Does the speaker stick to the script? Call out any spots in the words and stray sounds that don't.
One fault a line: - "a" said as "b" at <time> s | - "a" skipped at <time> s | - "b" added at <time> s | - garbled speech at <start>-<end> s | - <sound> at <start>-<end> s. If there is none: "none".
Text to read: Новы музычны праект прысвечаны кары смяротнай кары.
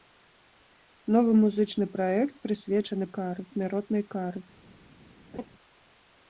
- laugh at 5.3-5.5 s